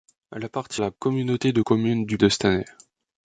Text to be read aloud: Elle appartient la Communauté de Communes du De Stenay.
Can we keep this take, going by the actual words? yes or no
yes